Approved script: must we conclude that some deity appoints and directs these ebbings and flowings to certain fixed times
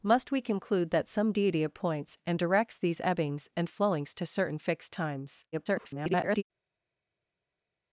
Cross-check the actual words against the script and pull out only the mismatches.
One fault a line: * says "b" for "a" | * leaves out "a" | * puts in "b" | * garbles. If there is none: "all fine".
* garbles